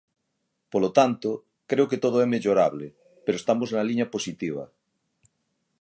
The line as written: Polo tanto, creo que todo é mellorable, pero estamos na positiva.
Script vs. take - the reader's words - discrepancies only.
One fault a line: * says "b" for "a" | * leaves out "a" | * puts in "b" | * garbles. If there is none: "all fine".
* puts in "liña"